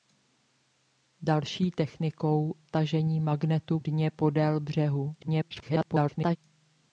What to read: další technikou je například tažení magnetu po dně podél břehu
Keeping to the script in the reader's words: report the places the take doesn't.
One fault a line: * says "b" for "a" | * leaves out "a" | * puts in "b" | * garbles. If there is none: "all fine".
* leaves out "je například"
* leaves out "po"
* garbles